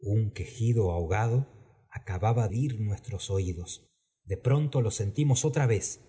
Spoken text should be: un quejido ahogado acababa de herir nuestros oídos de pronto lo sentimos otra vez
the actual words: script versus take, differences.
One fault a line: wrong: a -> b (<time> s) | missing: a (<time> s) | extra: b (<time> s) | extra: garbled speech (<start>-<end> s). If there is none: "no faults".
missing: de (2.5 s)